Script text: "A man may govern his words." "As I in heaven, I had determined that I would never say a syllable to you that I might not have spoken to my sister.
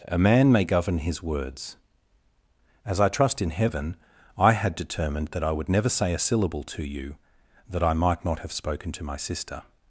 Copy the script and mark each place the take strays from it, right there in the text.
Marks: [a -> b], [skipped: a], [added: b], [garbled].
"A man may govern his words." "As I [added: trust] in heaven, I had determined that I would never say a syllable to you that I might not have spoken to my sister.